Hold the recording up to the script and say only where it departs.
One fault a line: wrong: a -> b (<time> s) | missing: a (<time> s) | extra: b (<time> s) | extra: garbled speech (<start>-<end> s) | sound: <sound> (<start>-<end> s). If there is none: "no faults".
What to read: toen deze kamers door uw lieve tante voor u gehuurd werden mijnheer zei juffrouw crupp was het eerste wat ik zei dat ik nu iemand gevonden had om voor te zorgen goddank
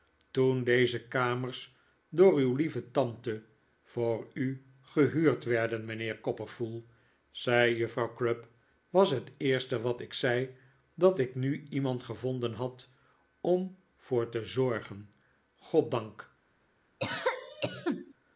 extra: copperfull (6.2 s)
sound: cough (17.0-18.1 s)